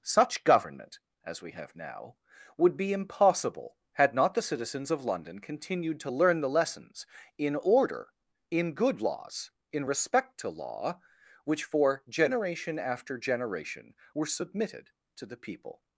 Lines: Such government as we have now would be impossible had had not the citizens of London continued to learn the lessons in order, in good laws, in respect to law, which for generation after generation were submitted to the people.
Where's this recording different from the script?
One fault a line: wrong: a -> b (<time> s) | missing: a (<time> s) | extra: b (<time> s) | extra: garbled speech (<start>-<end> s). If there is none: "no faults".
missing: had (4.2 s)